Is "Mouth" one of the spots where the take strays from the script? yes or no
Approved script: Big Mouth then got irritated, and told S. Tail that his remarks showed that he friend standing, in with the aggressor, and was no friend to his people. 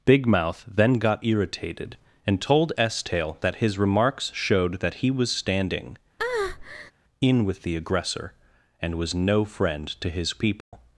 no